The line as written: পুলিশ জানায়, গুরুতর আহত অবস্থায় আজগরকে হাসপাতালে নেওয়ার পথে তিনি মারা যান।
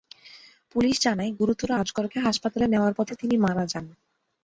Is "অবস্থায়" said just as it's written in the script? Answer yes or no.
no